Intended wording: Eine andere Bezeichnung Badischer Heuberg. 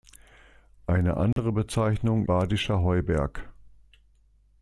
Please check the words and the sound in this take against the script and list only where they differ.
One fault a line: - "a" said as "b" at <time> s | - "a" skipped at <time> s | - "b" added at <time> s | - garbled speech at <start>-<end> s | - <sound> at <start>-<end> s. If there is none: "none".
- dropout at 1.3-1.4 s